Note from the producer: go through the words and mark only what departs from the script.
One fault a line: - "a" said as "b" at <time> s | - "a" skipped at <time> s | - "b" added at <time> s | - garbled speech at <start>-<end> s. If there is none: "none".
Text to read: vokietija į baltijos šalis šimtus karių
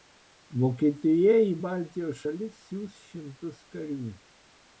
- "siųs" added at 2.7 s